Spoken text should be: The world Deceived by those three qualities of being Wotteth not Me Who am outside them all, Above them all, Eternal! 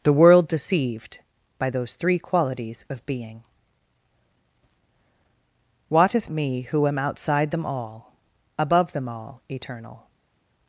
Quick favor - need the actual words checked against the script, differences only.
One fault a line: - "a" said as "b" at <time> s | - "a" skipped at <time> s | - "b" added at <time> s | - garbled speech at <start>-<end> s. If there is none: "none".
- "not" skipped at 6.3 s